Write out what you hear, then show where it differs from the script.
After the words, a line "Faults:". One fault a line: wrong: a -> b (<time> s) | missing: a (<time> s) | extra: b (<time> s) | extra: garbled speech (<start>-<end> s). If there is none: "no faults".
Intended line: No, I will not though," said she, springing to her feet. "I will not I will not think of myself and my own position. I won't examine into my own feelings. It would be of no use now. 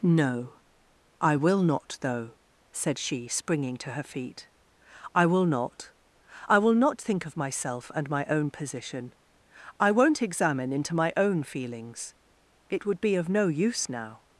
No, I will not though," said she, springing to her feet. "I will not I will not think of myself and my own position. I won't examine into my own feelings. It would be of no use now.
Faults:
no faults